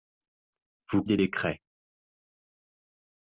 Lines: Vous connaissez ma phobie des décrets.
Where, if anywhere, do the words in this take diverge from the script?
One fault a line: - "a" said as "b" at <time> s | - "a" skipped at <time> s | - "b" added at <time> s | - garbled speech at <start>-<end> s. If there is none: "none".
- "connaissez ma phobie" skipped at 1.0 s